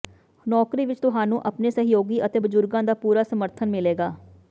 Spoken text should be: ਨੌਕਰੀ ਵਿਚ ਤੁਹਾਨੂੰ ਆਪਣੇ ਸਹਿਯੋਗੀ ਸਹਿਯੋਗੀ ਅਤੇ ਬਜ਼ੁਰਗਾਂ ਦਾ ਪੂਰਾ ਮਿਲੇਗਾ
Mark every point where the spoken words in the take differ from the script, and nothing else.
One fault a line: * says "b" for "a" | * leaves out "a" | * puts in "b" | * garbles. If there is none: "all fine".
* leaves out "ਸਹਿਯੋਗੀ"
* puts in "ਸਮਰਥਨ"